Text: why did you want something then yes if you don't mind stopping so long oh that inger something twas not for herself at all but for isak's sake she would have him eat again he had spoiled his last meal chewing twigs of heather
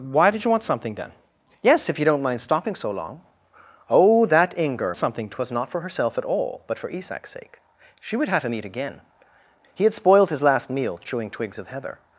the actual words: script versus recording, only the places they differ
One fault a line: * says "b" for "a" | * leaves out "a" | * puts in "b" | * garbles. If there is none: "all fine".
all fine